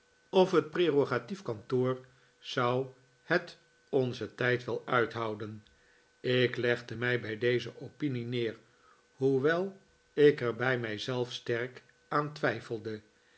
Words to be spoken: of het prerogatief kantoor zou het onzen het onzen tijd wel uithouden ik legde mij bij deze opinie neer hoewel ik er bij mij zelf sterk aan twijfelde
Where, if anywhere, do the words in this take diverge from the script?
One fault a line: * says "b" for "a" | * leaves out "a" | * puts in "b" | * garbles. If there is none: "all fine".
* leaves out "het onzen"